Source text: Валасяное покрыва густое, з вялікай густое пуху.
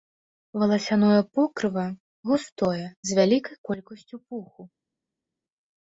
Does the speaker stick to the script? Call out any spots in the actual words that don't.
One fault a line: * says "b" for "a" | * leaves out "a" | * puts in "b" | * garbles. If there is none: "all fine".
* says "колькасцю" for "густое"